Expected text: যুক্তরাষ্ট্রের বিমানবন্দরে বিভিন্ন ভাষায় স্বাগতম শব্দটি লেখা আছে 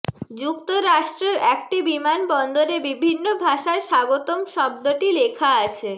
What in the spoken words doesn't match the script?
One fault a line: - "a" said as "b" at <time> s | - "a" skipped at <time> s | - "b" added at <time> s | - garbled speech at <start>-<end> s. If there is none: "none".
- "একটি" added at 1.5 s